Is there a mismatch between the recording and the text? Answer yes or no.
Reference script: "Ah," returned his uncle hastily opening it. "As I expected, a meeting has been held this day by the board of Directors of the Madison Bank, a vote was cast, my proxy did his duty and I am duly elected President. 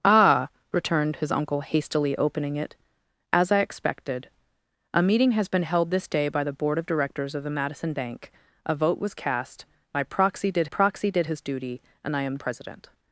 yes